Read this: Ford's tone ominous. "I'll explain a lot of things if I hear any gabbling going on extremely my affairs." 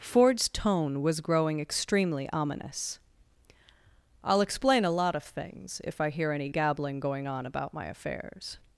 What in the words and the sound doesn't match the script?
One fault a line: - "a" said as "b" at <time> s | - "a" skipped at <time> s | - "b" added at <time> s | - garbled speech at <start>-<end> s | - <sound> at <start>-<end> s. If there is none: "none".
- "was growing extremely" added at 1.0 s
- "extremely" said as "about" at 7.4 s